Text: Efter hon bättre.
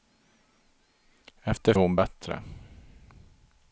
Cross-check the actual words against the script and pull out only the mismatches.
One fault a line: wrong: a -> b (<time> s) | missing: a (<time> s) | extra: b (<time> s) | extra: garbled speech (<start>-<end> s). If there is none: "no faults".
no faults